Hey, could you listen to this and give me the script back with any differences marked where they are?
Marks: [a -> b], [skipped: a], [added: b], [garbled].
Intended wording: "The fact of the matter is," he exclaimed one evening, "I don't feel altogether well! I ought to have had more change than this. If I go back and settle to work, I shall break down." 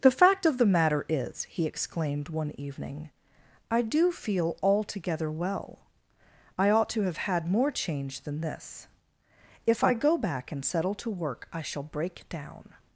"The fact of the matter is," he exclaimed one evening, "I [don't -> do] feel altogether well! I ought to have had more change than this. If I go back and settle to work, I shall break down."